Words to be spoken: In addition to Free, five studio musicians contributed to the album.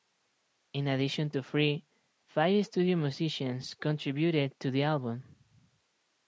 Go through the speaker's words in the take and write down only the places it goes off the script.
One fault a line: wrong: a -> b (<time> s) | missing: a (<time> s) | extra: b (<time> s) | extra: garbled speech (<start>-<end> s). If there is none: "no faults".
no faults